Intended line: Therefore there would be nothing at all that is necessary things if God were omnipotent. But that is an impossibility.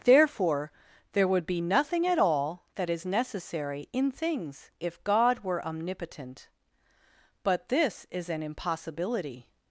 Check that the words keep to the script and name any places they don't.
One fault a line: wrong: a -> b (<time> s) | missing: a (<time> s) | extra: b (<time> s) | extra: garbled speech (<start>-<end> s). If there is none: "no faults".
extra: in (3.9 s)
wrong: that -> this (7.7 s)